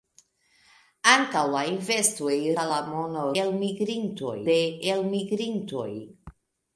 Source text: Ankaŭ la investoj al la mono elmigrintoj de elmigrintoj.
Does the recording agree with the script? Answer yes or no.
yes